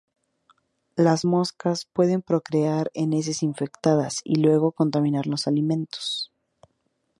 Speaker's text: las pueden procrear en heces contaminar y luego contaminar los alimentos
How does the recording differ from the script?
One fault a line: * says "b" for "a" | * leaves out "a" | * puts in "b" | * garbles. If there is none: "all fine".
* puts in "moscas"
* says "infectadas" for "contaminar"